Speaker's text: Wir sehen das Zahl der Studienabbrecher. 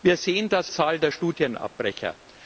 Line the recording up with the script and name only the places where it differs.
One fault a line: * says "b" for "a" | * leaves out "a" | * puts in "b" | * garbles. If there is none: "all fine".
all fine